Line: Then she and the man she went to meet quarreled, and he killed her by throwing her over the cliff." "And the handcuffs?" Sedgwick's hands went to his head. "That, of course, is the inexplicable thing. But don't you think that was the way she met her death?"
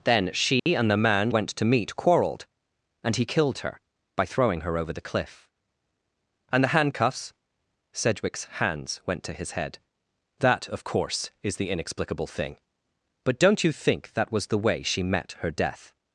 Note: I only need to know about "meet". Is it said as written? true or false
true